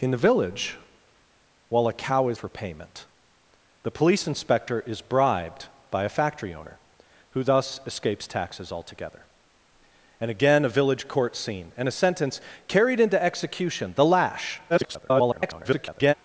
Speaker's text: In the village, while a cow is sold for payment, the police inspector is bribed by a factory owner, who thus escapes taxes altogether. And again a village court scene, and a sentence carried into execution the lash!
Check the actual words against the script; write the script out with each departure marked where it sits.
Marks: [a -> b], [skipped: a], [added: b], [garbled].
In the village, while a cow is [skipped: sold] for payment, the police inspector is bribed by a factory owner, who thus escapes taxes altogether. And again a village court scene, and a sentence carried into execution the lash! [garbled]